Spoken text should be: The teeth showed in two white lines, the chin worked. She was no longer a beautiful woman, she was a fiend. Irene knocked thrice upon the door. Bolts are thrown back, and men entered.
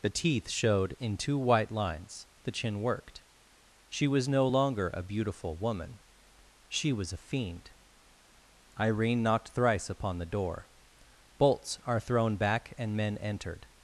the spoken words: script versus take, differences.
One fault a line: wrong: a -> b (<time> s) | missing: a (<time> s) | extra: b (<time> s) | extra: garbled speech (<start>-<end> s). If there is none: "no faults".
no faults